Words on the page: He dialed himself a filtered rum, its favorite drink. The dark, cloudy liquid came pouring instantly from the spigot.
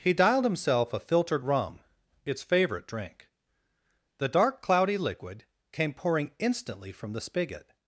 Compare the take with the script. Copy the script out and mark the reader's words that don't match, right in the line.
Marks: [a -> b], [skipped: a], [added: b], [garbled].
He dialed himself a filtered rum, its favorite drink. The dark, cloudy liquid came pouring instantly from the spigot.